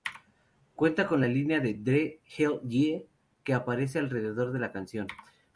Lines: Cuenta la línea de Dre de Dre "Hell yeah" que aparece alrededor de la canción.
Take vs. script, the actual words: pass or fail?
fail